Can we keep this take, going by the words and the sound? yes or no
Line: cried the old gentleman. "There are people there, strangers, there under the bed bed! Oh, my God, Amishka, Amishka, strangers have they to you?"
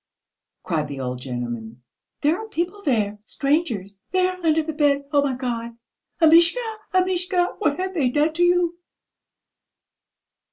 no